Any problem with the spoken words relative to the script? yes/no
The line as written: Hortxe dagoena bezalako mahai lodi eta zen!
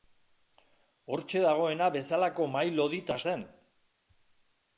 no